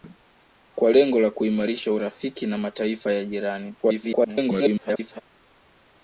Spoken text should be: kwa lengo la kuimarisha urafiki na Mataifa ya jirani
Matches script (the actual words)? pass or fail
fail